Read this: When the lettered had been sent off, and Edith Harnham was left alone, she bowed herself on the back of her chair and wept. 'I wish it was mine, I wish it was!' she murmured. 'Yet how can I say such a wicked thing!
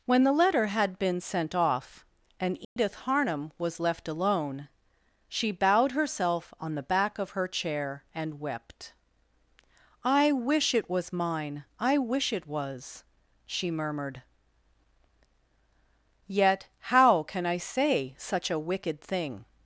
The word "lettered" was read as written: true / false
false